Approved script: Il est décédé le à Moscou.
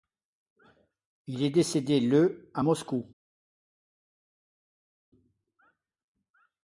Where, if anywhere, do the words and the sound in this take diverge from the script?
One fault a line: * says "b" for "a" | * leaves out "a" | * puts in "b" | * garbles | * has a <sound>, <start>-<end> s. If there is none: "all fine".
all fine